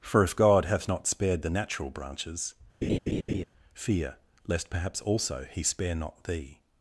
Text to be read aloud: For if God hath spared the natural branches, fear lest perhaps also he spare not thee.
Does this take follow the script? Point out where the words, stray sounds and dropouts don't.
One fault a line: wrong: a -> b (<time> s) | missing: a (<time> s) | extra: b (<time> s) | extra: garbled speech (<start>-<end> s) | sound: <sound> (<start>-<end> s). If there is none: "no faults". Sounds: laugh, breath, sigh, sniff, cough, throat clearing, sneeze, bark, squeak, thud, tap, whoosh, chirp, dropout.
extra: not (0.9 s)
sound: laugh (2.8-3.4 s)